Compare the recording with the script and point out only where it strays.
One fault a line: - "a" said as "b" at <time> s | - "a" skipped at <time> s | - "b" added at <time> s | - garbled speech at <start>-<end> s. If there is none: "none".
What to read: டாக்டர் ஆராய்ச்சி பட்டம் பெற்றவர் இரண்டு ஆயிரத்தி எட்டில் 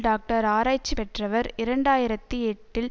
- "பட்டம்" skipped at 0.9 s